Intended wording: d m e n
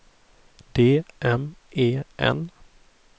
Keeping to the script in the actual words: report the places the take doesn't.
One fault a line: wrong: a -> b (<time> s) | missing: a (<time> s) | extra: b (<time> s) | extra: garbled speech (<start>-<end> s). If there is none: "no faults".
no faults